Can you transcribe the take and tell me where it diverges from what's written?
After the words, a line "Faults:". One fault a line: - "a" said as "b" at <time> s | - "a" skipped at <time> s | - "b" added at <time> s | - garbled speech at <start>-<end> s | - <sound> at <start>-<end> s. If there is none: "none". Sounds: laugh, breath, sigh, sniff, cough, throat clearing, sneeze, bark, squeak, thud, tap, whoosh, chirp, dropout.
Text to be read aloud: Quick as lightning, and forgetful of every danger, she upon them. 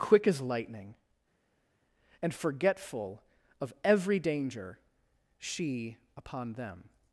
Quick as lightning, and forgetful of every danger, she upon them.
Faults:
none